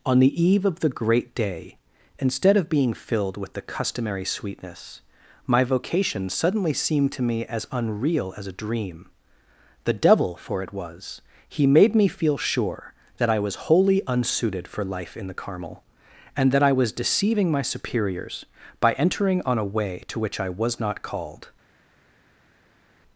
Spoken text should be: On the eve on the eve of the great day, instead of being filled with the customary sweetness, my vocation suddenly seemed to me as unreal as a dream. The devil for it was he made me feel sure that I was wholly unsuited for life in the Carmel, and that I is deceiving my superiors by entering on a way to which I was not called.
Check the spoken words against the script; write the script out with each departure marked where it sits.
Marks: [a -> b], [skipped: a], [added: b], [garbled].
On the eve [skipped: on the eve] of the great day, instead of being filled with the customary sweetness, my vocation suddenly seemed to me as unreal as a dream. The devil for it was he made me feel sure that I was wholly unsuited for life in the Carmel, and that I [is -> was] deceiving my superiors by entering on a way to which I was not called.